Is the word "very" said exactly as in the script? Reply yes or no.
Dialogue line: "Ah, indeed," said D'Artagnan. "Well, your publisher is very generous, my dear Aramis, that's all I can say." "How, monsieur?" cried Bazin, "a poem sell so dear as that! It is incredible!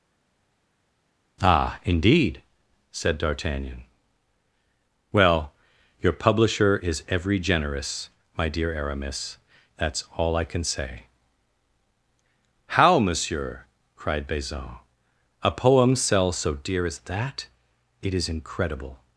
no